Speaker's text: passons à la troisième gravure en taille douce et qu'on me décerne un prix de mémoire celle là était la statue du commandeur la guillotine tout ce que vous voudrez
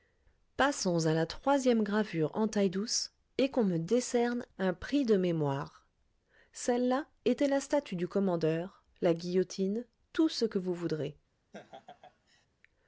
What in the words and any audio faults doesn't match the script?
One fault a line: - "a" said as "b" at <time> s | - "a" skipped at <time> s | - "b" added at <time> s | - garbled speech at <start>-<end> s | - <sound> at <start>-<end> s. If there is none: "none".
- laugh at 11.5-12.5 s